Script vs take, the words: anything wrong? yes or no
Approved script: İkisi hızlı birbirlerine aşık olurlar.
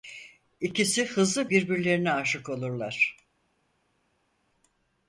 no